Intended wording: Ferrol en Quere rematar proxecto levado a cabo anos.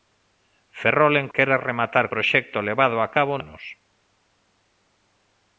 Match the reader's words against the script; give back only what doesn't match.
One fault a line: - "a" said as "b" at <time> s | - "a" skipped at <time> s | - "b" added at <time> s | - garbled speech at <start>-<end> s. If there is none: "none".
none